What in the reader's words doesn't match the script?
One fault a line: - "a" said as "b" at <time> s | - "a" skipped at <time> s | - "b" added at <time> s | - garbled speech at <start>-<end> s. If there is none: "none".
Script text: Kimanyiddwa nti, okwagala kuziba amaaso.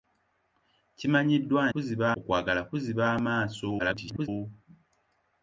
- "nti" said as "kuziba" at 1.7 s
- garbled speech at 3.8-4.3 s